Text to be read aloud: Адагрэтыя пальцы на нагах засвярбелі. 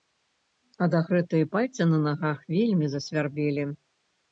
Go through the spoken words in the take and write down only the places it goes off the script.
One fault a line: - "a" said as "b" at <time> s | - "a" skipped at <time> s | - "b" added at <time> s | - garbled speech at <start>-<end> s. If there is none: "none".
- "вельмі" added at 2.5 s